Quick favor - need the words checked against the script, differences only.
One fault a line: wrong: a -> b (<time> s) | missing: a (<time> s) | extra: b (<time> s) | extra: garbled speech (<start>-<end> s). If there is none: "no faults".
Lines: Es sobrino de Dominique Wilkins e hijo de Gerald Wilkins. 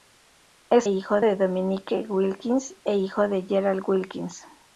wrong: sobrino -> hijo (0.9 s)